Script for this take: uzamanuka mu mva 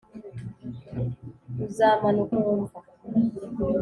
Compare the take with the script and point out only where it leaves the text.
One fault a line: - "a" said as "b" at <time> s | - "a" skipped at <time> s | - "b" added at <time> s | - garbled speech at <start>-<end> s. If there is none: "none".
none